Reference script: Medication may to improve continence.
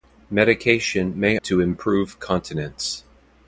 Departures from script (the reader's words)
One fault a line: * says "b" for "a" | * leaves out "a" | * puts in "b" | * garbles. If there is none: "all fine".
all fine